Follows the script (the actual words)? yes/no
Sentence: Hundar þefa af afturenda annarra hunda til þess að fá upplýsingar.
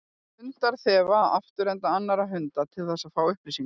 yes